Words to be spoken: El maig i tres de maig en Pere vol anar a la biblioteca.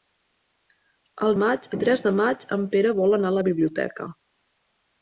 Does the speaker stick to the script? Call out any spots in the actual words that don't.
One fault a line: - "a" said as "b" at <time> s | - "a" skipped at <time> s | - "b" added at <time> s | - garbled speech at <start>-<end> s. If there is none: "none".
none